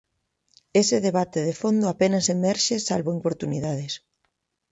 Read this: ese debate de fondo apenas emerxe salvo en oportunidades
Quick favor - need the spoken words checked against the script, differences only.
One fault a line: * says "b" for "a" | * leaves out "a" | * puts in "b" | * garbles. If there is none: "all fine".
all fine